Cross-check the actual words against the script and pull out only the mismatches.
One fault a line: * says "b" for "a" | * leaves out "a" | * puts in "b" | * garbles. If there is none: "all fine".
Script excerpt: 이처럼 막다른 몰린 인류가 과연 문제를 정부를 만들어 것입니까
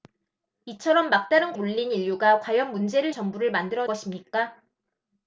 all fine